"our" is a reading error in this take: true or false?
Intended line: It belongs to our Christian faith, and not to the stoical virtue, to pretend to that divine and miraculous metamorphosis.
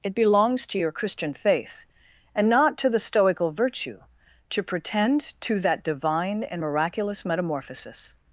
true